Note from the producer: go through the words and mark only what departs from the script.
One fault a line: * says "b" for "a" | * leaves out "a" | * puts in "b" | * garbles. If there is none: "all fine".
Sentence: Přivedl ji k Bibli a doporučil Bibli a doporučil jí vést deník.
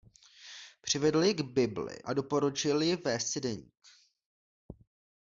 * leaves out "Bibli a doporučil"
* puts in "si"